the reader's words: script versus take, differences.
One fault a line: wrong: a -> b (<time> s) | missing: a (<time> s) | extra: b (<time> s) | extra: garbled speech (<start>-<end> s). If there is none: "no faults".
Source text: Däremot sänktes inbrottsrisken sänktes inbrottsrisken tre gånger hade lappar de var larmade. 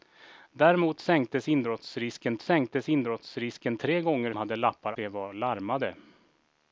no faults